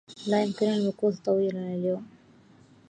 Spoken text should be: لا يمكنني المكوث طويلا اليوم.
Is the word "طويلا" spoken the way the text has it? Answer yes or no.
yes